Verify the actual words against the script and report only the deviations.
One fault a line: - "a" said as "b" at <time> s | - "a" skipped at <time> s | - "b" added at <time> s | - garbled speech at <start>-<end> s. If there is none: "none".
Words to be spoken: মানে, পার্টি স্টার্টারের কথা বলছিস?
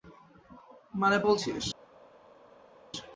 - "পার্টি স্টার্টারের কথা" skipped at 1.2 s